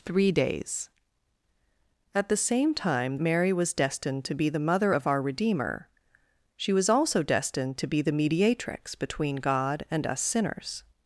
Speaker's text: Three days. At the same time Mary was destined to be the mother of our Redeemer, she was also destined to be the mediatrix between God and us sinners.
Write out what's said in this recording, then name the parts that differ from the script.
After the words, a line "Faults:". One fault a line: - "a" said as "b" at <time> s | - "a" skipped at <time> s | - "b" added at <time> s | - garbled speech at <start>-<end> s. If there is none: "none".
Three days. At the same time Mary was destined to be the mother of our Redeemer, she was also destined to be the mediatrix between God and us sinners.
Faults:
none